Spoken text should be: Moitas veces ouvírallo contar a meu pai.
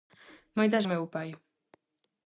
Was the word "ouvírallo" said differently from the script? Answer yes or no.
yes